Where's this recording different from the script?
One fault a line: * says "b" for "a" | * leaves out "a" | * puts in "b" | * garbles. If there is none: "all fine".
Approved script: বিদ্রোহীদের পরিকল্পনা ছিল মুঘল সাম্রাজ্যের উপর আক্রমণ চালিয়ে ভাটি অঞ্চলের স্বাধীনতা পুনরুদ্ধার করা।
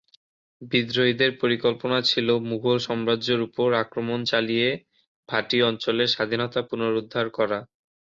all fine